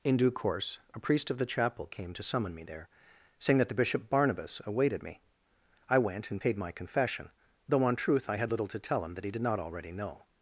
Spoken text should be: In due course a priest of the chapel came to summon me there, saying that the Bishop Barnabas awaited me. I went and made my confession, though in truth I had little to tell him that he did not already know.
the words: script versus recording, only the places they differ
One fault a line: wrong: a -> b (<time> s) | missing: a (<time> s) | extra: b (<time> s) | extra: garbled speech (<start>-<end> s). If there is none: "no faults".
wrong: made -> paid (6.4 s)
wrong: in -> on (7.8 s)